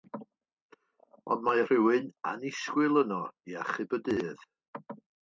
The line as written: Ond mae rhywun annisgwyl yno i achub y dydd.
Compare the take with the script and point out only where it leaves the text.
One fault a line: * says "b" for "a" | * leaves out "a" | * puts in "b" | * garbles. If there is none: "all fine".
all fine